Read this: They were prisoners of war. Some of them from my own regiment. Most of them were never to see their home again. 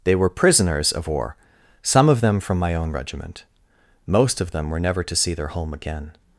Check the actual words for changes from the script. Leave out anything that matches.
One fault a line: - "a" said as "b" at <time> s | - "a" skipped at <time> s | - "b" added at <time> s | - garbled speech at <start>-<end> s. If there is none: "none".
none